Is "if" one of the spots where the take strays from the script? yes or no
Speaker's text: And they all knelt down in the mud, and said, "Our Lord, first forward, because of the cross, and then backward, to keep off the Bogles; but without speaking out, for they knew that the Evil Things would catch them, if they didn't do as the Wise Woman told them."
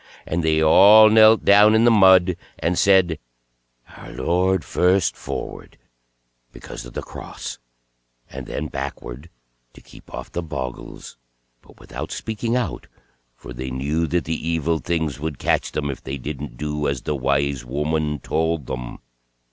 no